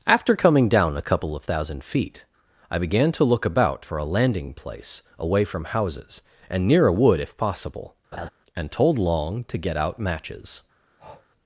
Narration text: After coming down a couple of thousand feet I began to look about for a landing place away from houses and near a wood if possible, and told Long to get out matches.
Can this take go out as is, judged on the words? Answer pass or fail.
pass